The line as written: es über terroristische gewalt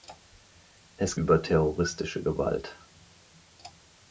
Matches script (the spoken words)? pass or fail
pass